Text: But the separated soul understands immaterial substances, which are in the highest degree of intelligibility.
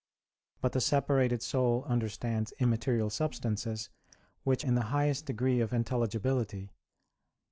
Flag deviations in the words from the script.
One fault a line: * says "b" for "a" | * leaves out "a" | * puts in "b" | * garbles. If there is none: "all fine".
* leaves out "are"